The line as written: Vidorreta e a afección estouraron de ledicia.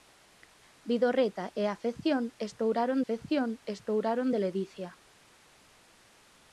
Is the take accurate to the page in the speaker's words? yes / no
no